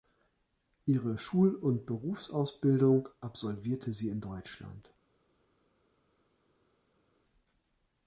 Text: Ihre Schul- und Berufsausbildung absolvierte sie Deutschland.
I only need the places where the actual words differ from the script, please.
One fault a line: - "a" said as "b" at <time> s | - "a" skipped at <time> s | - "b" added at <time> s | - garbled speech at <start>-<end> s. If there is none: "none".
- "in" added at 4.1 s